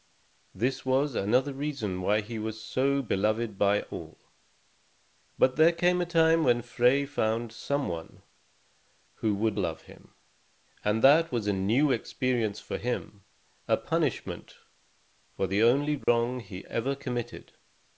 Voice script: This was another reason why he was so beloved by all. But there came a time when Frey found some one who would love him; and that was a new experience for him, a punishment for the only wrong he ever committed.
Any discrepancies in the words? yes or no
no